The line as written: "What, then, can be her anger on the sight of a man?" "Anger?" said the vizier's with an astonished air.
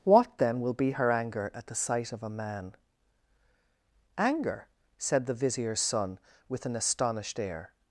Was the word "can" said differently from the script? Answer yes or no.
yes